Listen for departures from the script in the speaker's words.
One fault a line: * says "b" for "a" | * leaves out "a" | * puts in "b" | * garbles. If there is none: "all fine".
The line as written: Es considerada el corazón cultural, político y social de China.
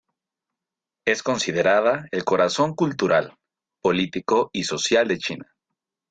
all fine